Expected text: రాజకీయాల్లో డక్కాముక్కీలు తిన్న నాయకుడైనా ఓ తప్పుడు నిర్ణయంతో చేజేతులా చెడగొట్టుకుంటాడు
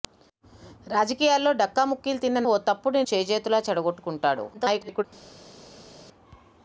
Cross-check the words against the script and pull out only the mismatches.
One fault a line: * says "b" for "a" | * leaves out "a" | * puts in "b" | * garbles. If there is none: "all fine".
* leaves out "నాయకుడైనా"
* leaves out "నిర్ణయంతో"
* garbles